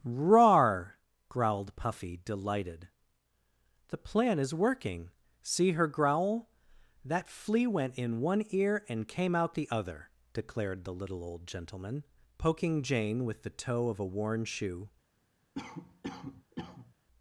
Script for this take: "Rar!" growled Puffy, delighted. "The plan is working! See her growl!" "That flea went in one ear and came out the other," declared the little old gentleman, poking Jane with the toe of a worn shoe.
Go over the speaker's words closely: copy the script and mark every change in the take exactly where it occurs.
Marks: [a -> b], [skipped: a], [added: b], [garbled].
"Rar!" growled Puffy, delighted. "The plan is working! See her growl!" "That flea went in one ear and came out the other," declared the little old gentleman, poking Jane with the toe of a worn shoe.